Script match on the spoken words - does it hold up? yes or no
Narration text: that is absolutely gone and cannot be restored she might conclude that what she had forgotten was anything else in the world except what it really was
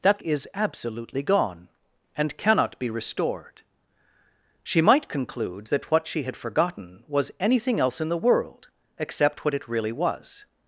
yes